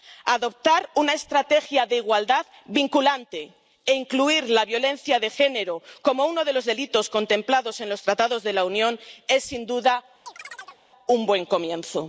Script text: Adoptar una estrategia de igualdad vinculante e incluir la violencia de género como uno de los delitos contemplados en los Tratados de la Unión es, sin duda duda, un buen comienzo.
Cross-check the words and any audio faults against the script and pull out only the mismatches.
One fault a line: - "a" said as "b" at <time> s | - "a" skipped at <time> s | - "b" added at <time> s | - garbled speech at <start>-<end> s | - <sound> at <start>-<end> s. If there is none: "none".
- "duda" skipped at 10.0 s
- chirp at 10.3-10.8 s